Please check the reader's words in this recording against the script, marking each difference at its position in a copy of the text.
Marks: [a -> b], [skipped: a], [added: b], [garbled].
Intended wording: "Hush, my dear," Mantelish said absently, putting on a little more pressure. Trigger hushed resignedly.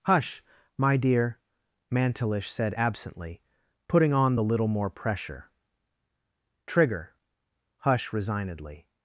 "Hush, my dear," Mantelish said absently, putting on [a -> the] little more pressure. Trigger [hushed -> hush] resignedly.